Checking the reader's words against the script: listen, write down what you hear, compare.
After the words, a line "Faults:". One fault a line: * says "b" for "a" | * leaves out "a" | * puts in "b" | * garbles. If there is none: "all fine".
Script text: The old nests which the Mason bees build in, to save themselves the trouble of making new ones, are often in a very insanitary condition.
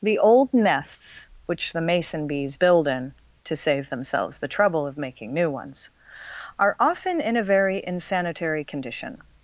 The old nests which the Mason bees build in, to save themselves the trouble of making new ones, are often in a very insanitary condition.
Faults:
all fine